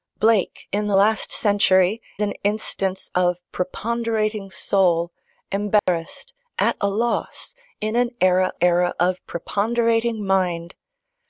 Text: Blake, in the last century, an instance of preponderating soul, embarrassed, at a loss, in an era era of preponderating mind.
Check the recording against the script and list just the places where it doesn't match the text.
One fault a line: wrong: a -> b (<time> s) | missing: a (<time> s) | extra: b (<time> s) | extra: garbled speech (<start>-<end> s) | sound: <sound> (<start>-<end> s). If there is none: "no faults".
sound: dropout (5.8-5.9 s)